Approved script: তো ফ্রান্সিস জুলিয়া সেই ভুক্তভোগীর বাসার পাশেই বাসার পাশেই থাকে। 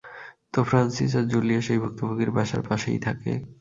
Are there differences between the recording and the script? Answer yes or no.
yes